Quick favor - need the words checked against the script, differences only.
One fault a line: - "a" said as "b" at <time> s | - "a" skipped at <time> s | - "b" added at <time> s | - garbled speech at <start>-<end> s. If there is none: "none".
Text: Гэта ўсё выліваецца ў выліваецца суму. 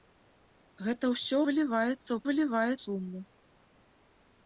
none